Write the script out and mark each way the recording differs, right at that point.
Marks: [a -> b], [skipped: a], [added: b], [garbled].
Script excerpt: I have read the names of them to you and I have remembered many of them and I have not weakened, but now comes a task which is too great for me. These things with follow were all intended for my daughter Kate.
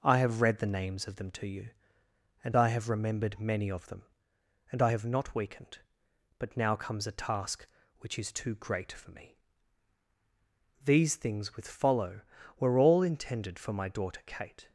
I have read the names of them to you and I have remembered many of them and I have not weakened, but now comes a task which is too great for me. These things with follow were all intended for my daughter Kate.